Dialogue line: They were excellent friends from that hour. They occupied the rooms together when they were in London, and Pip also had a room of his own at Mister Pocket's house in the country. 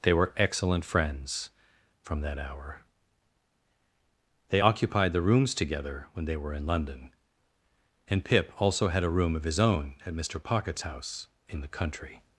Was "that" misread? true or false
false